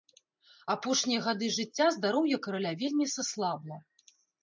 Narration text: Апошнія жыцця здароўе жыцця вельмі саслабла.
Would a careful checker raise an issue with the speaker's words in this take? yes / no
yes